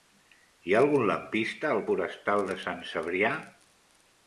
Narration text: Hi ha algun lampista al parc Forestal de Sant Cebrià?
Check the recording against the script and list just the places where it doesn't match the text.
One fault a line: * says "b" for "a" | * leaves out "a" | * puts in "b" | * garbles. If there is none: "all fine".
* leaves out "parc"